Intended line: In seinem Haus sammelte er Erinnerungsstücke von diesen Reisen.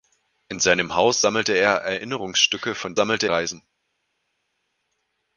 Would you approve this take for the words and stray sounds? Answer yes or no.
no